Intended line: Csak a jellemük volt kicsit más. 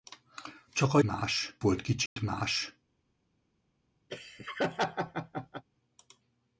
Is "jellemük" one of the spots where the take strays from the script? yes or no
yes